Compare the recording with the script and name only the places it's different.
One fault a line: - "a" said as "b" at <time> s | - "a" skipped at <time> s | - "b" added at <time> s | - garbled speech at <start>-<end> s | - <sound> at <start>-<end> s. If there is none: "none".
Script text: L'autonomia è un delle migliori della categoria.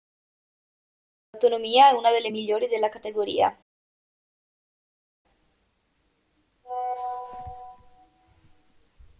- "un" said as "una" at 1.9 s